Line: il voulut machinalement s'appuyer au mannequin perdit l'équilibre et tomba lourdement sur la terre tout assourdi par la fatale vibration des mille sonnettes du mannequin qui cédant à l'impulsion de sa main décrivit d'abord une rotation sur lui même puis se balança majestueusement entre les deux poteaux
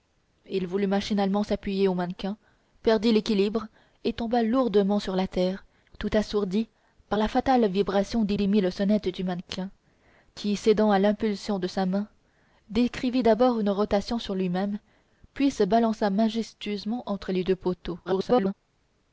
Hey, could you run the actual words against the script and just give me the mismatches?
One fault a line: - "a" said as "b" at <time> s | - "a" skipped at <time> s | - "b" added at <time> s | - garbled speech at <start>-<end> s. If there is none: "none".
- "des" added at 8.3 s
- garbled speech at 18.1-18.5 s